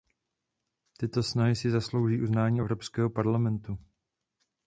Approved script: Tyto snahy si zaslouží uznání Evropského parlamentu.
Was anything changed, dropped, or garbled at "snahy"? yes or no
no